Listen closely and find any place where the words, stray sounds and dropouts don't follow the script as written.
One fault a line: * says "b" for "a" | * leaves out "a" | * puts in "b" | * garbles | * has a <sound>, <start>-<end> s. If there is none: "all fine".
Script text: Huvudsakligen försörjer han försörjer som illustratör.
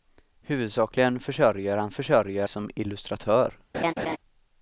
* has a laugh, 3.7-4.2 s